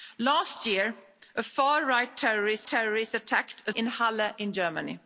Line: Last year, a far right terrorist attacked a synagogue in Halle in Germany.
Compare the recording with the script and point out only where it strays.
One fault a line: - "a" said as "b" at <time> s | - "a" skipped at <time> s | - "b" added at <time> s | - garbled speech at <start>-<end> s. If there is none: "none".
- "terrorist" added at 2.7 s
- "synagogue" skipped at 3.7 s